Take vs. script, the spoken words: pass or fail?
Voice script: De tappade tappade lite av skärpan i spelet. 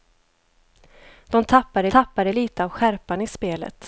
pass